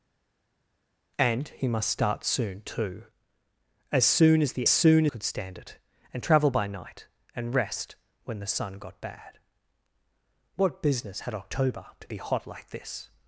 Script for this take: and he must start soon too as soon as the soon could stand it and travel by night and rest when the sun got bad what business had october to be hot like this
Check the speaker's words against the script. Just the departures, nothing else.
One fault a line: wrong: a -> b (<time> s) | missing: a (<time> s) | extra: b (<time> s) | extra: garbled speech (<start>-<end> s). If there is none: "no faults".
no faults